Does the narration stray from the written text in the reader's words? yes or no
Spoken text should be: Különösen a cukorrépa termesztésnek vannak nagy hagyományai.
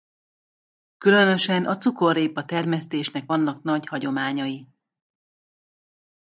no